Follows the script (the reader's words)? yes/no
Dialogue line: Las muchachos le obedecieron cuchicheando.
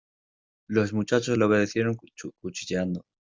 no